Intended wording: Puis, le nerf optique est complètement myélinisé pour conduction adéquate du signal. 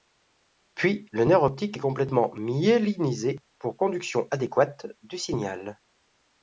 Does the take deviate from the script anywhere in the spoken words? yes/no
no